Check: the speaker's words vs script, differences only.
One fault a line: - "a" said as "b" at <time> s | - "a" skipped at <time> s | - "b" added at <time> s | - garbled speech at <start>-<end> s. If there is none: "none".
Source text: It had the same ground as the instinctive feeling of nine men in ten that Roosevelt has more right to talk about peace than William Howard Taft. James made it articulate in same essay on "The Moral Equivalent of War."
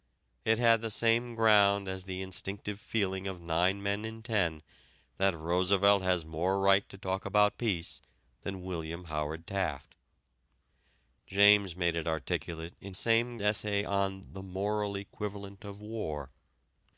none